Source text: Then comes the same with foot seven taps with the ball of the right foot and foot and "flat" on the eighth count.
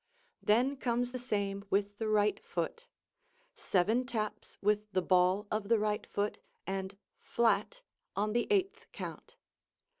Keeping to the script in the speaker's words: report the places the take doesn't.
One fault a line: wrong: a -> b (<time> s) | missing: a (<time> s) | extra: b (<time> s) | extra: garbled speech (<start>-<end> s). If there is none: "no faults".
extra: the right (2.0 s)
missing: foot and (7.0 s)